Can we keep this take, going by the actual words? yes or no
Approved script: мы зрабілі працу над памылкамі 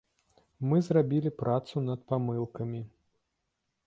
yes